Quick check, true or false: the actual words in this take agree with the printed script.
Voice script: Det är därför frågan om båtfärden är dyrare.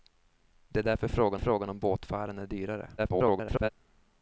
false